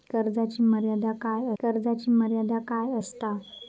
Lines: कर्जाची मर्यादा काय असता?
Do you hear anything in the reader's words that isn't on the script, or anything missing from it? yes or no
yes